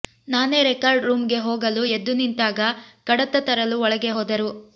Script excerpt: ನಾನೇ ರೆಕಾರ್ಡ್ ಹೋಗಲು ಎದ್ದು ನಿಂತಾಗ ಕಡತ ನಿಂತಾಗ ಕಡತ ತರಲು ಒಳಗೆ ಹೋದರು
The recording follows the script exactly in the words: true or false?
false